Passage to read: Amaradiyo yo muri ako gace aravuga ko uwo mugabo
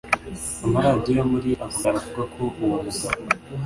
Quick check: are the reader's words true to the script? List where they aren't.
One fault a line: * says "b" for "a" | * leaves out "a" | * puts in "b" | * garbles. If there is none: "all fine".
* leaves out "gace"